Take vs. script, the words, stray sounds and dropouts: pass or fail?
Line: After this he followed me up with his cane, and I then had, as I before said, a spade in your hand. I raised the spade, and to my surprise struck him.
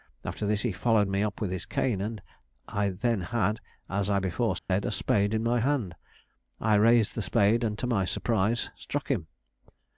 fail